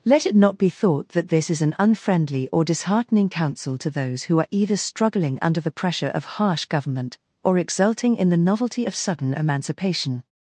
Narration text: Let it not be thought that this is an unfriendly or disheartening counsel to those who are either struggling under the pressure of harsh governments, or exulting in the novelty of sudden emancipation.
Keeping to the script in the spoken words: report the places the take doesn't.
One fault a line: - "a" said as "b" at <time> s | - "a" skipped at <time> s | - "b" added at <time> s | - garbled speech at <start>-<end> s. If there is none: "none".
- "governments" said as "government" at 6.7 s